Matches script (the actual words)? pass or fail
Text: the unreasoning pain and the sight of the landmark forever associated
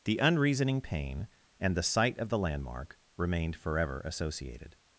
fail